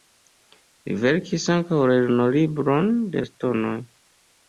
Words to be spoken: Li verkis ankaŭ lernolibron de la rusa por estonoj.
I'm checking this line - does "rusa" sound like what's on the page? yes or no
no